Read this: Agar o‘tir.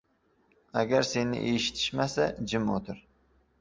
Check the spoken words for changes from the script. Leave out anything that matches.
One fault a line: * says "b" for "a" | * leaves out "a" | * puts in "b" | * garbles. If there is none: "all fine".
* puts in "seni eshitishmasa jim"